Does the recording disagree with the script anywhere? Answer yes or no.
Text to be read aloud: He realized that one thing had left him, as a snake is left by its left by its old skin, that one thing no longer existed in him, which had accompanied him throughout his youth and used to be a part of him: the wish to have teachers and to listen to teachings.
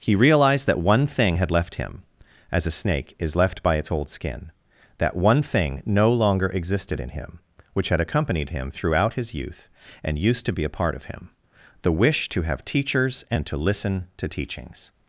yes